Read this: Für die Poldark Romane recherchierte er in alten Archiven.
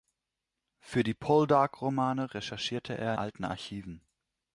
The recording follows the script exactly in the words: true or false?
false